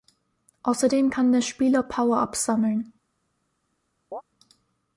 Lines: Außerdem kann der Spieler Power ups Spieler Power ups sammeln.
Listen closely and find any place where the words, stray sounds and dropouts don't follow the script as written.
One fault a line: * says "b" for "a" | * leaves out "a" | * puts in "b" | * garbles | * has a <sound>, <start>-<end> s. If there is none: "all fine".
* leaves out "Spieler Power ups"
* has a chirp, 4.1-4.2 s